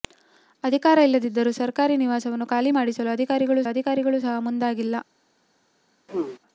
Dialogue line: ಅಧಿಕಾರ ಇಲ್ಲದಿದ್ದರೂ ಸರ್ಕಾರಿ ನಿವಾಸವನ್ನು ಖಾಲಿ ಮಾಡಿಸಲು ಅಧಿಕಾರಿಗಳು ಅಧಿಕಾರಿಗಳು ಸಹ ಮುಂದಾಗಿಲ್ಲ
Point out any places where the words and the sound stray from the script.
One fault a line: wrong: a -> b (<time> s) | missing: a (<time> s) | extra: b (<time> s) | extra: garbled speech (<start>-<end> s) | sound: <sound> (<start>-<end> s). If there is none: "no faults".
sound: throat clearing (6.1-6.4 s)